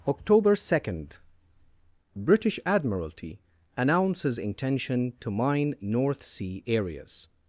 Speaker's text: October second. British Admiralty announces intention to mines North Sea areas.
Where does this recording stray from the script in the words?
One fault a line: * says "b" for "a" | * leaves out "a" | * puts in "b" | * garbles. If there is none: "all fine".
* says "mine" for "mines"